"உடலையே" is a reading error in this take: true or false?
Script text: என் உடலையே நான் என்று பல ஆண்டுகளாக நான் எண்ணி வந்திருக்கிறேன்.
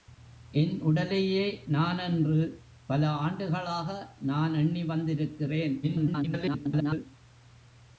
false